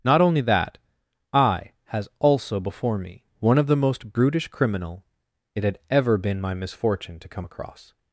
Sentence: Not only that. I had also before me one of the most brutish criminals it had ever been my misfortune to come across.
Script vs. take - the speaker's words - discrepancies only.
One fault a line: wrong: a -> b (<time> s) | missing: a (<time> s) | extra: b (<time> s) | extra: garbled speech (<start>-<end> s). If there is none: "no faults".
wrong: had -> has (1.9 s)
wrong: criminals -> criminal (4.5 s)